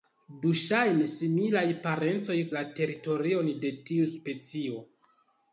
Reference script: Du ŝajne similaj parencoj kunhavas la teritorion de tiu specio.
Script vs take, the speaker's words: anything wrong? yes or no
yes